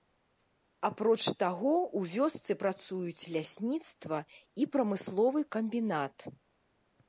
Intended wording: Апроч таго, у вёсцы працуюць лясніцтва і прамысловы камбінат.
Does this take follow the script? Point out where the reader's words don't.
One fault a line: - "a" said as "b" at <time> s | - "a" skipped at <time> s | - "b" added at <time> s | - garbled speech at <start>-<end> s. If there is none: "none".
none